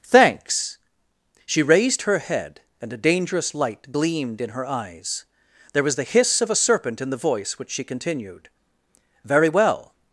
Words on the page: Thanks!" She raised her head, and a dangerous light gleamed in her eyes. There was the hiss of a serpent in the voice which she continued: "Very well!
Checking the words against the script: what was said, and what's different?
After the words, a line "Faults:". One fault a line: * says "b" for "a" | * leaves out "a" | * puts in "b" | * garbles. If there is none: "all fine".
Thanks!" She raised her head, and a dangerous light gleamed in her eyes. There was the hiss of a serpent in the voice which she continued: "Very well!
Faults:
all fine